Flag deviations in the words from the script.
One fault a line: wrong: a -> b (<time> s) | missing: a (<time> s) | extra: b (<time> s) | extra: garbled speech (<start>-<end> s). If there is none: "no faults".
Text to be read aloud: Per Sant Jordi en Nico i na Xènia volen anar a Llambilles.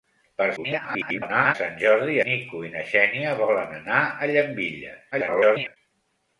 extra: garbled speech (0.6-1.5 s)
missing: en (2.2 s)
extra: garbled speech (5.1-5.8 s)